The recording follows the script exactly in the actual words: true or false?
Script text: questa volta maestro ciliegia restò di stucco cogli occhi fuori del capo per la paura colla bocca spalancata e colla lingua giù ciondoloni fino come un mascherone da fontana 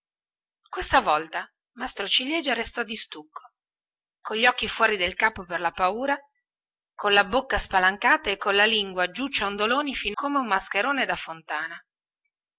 true